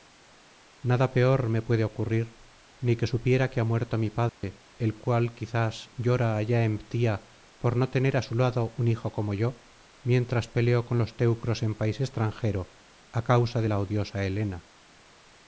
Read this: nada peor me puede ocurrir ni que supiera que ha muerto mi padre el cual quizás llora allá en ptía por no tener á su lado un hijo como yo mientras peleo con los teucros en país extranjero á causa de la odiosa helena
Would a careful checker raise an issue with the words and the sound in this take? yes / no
yes